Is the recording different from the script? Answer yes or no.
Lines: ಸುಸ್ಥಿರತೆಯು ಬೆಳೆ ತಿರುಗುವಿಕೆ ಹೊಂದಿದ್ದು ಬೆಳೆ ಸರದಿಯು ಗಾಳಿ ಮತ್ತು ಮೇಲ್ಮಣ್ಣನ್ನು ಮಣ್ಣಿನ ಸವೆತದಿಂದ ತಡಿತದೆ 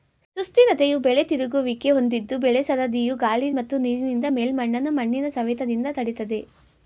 yes